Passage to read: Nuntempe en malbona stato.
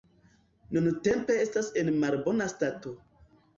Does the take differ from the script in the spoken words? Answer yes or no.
yes